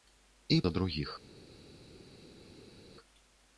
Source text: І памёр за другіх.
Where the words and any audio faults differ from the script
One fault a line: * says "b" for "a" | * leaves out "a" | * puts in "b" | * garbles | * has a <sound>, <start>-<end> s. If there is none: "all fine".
* leaves out "памёр"